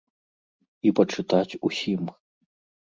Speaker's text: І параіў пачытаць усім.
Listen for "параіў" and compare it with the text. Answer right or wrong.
wrong